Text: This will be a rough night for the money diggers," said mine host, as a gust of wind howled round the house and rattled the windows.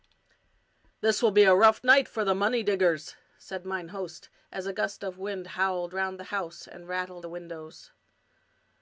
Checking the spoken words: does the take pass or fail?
pass